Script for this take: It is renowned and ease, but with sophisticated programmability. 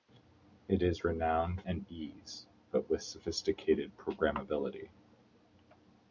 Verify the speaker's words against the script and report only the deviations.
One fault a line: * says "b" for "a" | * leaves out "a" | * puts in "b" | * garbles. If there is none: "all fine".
all fine